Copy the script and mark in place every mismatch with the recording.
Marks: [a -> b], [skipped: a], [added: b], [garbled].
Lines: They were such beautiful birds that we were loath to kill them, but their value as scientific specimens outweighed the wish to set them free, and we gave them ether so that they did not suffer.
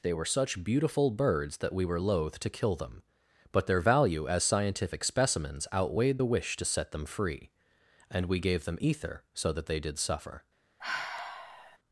They were such beautiful birds that we were loath to kill them, but their value as scientific specimens outweighed the wish to set them free, and we gave them ether so that they did [skipped: not] suffer.